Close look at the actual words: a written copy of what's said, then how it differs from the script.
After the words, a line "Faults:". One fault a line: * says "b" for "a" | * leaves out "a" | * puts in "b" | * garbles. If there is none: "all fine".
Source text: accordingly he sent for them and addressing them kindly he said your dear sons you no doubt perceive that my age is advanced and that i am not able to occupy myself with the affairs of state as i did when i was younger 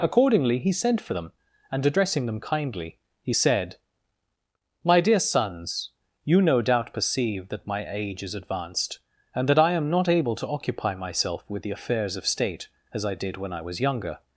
accordingly he sent for them and addressing them kindly he said my dear sons you no doubt perceive that my age is advanced and that i am not able to occupy myself with the affairs of state as i did when i was younger
Faults:
* says "my" for "your"